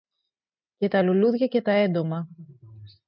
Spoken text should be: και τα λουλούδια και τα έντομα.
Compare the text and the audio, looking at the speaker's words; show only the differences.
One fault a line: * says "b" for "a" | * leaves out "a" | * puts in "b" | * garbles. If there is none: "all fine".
all fine